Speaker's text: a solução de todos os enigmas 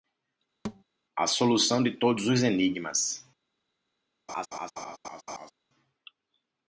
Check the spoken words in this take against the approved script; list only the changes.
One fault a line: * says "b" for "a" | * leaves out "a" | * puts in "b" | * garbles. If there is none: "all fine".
all fine